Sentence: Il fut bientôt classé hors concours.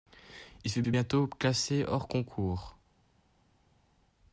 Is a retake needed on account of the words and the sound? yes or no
yes